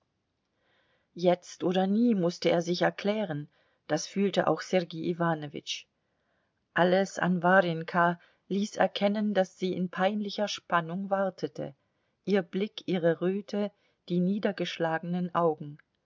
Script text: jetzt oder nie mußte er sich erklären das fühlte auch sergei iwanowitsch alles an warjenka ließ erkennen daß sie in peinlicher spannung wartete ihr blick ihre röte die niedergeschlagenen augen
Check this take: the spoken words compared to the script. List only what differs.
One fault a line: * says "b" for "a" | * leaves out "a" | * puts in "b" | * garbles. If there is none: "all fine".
all fine